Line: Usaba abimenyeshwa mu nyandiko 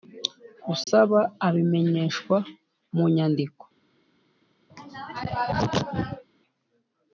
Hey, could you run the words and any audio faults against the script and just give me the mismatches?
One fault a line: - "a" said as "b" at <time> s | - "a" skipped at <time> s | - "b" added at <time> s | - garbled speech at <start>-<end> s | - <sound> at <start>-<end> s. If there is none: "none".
- dropout at 0.8-0.9 s
- throat clearing at 4.7-6.2 s